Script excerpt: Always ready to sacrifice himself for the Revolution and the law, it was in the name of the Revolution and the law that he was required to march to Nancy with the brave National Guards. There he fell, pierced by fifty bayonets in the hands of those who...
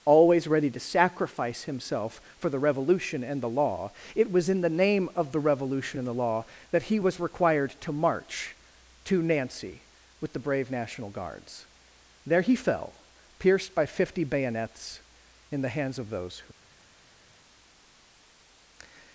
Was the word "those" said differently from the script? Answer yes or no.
no